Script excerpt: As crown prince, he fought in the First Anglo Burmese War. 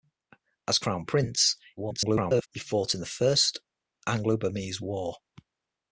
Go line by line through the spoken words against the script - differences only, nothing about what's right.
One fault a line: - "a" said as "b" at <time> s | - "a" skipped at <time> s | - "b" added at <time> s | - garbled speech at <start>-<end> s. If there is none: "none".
- garbled speech at 1.8-2.5 s